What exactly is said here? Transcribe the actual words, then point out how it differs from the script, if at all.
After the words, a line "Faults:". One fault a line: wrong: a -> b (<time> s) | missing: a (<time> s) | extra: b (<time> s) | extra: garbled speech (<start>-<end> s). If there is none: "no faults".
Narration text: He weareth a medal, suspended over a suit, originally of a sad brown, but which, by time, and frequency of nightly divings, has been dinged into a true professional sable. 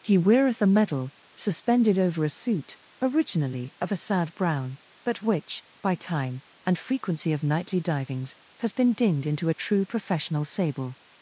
He weareth a medal, suspended over a suit, originally of a sad brown, but which, by time, and frequency of nightly divings, has been dinged into a true professional sable.
Faults:
no faults